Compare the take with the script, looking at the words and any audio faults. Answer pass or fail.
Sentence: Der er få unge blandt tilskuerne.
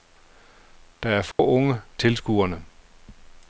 fail